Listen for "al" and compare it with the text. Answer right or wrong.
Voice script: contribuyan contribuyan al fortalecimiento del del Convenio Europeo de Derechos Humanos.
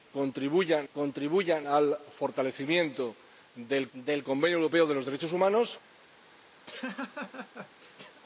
right